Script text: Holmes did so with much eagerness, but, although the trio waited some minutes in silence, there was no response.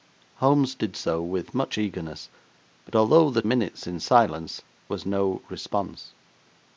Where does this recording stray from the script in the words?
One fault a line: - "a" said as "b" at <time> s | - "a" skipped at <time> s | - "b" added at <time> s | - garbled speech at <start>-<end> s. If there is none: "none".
- "trio waited some" skipped at 3.4 s
- "there" skipped at 4.6 s